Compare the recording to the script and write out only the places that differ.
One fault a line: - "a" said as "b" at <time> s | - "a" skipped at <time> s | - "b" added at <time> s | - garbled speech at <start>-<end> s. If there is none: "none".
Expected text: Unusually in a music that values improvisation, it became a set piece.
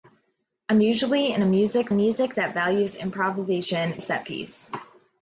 - "music" added at 1.9 s
- "it became" skipped at 4.0 s